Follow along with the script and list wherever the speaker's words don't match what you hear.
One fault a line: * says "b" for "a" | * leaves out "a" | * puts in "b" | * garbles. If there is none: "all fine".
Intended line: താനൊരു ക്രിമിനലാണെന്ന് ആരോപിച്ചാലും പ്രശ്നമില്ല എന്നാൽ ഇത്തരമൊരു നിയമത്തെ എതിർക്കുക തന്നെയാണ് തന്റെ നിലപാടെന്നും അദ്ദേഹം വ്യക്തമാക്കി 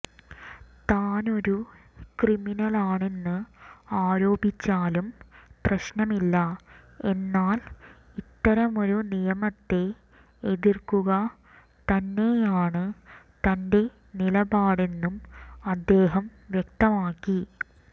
all fine